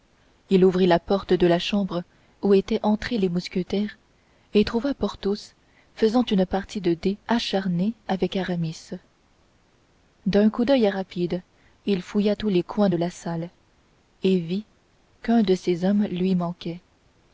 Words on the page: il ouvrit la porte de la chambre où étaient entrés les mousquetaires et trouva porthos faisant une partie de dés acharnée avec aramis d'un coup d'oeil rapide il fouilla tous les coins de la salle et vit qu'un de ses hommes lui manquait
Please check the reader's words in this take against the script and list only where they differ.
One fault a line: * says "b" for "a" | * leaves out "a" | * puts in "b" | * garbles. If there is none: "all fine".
all fine